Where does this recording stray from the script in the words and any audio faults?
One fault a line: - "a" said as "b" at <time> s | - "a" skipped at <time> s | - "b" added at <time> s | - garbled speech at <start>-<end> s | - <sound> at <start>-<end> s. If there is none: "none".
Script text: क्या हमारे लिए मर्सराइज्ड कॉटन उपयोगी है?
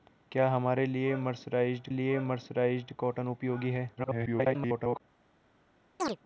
- "लिए मर्सराइज्ड" added at 1.9 s
- garbled speech at 4.0-5.0 s
- chirp at 6.0-6.2 s